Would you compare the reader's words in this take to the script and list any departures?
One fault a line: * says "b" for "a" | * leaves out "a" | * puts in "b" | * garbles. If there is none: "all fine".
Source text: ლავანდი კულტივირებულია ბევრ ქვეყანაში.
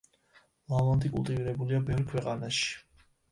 all fine